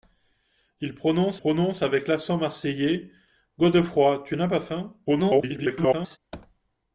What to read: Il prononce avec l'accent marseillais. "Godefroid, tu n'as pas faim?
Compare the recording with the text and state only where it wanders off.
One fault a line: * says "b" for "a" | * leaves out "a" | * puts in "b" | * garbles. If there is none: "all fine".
* puts in "prononce"
* garbles